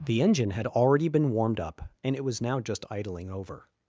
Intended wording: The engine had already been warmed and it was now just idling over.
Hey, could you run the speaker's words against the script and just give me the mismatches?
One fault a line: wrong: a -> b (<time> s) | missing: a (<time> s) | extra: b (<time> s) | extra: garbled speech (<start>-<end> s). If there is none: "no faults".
extra: up (1.6 s)